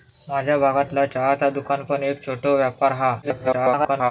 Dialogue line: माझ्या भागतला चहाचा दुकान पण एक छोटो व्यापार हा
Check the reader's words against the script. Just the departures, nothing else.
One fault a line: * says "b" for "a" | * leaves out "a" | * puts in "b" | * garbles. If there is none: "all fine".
* garbles